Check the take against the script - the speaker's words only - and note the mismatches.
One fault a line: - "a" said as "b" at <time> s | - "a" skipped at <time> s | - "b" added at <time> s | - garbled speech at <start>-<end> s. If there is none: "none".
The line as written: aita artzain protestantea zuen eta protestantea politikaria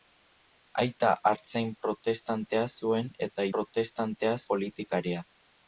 none